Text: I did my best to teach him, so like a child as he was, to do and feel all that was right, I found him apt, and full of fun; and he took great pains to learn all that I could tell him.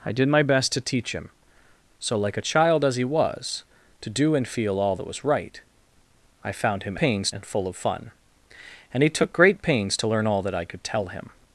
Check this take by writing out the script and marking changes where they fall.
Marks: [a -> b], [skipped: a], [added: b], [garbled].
I did my best to teach him, so like a child as he was, to do and feel all that was right, I found him [apt, -> pains] and full of fun; and he took great pains to learn all that I could tell him.